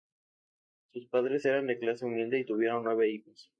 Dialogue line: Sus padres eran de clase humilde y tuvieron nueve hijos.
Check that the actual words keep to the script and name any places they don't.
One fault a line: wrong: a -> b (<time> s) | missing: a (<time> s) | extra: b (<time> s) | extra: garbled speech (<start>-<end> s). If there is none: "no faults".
no faults